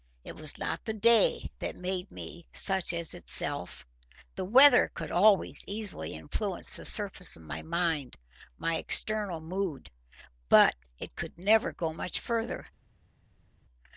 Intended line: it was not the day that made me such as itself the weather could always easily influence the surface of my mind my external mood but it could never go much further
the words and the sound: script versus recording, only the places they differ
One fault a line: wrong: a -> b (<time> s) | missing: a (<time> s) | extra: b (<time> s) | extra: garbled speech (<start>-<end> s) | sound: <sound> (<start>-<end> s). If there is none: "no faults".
no faults